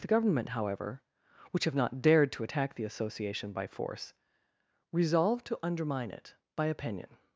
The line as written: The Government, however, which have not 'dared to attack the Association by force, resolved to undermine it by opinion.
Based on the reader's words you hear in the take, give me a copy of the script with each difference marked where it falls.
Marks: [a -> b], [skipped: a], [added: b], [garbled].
The Government, however, which have not 'dared to attack the Association by force, resolved to undermine it by opinion.